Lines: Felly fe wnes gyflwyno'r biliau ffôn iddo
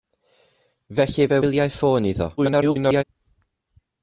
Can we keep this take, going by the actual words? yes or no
no